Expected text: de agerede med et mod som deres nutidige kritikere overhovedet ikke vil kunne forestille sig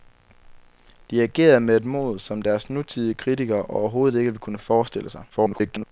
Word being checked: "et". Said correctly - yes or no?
yes